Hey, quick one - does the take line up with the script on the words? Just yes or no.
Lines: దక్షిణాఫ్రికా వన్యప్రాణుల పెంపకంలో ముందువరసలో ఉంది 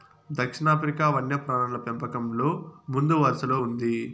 yes